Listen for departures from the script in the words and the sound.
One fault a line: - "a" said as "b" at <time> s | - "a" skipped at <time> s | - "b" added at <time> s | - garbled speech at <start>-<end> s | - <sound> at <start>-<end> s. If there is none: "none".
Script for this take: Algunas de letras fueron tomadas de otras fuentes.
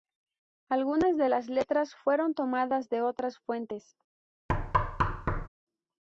- "las" added at 1.3 s
- thud at 4.5-5.5 s